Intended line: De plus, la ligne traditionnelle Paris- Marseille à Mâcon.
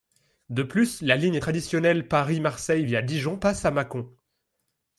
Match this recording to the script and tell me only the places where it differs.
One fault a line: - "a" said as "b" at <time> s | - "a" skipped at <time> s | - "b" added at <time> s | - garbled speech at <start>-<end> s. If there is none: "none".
- "via Dijon passe" added at 2.8 s